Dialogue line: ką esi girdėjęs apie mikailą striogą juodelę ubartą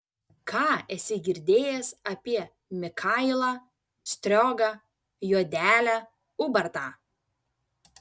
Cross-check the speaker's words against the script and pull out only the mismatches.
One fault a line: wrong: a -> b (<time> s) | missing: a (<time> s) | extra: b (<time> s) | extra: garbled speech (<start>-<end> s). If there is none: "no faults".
no faults